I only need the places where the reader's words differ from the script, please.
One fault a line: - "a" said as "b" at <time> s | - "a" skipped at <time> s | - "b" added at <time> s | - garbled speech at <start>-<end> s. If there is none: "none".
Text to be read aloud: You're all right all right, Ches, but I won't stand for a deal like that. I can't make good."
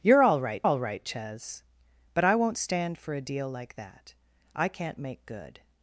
none